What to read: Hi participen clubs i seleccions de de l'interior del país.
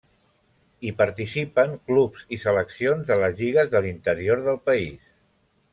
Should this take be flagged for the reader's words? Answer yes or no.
yes